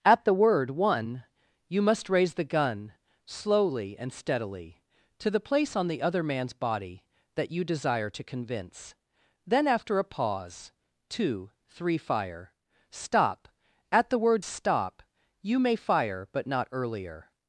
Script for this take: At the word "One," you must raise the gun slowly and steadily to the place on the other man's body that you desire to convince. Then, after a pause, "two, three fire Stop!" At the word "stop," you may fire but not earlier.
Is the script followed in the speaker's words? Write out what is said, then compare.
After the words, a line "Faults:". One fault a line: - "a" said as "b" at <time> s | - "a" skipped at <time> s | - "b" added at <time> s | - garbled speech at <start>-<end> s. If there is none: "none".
At the word "One," you must raise the gun slowly and steadily to the place on the other man's body that you desire to convince. Then, after a pause, "two, three fire Stop!" At the word "stop," you may fire but not earlier.
Faults:
none